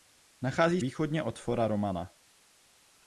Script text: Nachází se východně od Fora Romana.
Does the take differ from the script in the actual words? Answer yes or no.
yes